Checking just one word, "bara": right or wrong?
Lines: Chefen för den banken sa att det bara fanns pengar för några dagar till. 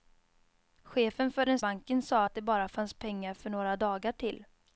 right